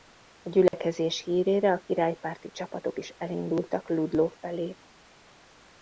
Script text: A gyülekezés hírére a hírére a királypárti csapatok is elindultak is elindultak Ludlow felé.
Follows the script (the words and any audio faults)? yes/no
no